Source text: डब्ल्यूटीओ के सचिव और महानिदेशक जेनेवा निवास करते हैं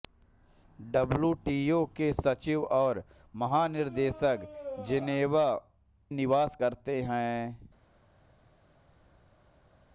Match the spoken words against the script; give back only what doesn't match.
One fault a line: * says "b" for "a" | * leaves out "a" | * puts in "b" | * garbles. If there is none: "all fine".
all fine